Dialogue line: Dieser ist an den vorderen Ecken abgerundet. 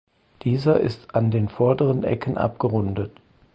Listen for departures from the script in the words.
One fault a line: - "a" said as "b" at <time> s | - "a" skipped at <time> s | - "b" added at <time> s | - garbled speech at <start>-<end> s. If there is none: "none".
none